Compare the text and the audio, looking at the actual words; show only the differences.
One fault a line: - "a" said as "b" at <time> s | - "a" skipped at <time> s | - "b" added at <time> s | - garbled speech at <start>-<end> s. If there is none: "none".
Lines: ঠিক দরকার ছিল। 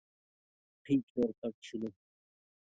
none